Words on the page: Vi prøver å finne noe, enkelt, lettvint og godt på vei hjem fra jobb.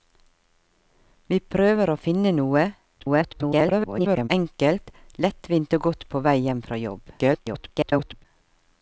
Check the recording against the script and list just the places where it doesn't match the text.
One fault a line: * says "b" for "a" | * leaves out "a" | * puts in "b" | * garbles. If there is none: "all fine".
* garbles
* garbles